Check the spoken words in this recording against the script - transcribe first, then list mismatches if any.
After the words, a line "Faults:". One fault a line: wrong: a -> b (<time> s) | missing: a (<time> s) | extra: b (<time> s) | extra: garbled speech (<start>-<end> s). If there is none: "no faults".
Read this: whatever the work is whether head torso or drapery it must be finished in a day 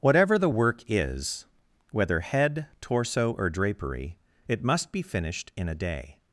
whatever the work is whether head torso or drapery it must be finished in a day
Faults:
no faults